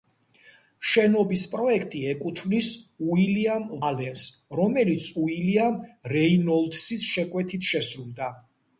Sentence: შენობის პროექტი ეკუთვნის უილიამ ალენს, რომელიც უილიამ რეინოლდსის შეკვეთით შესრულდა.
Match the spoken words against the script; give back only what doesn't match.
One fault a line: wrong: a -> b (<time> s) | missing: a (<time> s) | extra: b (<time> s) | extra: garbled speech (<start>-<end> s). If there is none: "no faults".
no faults